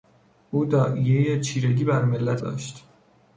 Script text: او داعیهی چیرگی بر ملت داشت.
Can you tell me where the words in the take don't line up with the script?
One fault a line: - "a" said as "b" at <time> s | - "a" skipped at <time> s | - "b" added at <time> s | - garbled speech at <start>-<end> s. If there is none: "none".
none